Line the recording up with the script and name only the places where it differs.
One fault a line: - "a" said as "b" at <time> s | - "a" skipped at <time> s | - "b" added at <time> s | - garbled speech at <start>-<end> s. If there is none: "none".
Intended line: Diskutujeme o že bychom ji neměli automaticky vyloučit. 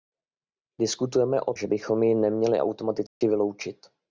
none